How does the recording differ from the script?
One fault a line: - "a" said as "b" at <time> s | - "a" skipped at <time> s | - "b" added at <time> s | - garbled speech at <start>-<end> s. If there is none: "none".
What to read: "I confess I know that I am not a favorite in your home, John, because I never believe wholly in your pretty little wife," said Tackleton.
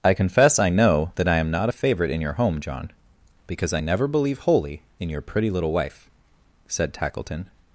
none